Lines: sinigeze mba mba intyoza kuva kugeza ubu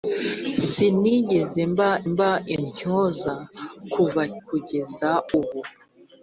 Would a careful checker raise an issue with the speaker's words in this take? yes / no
no